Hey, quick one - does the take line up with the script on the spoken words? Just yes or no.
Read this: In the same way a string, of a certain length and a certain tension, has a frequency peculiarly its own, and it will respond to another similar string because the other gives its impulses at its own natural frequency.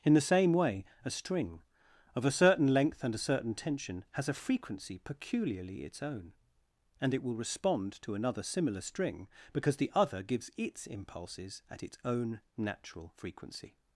yes